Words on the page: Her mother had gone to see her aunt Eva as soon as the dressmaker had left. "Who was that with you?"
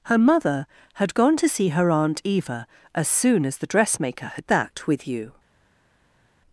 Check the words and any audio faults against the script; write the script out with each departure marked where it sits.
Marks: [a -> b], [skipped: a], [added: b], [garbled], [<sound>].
Her mother had gone to see her aunt Eva as soon as the dressmaker had [skipped: left. "Who was] that with you?"